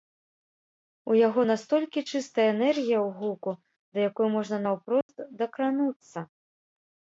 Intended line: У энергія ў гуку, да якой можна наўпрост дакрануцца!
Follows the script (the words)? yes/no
no